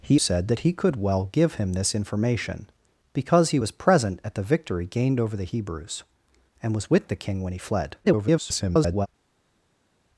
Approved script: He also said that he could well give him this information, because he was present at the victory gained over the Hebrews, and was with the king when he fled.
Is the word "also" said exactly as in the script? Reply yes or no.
no